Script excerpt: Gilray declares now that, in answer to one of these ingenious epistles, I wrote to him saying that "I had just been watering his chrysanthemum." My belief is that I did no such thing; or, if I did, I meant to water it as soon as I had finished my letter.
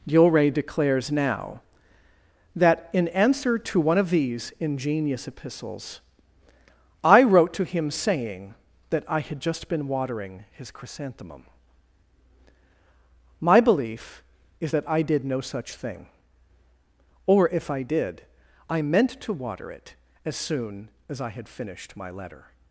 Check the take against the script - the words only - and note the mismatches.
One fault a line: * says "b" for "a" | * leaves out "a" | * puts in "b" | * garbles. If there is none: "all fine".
all fine